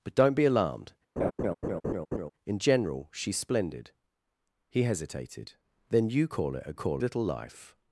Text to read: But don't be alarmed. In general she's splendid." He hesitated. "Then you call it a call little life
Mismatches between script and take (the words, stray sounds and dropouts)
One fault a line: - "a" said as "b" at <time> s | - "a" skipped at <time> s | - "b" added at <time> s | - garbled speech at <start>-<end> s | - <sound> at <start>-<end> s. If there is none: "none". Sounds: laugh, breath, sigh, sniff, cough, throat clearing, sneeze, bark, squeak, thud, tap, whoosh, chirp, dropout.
- laugh at 1.2-2.3 s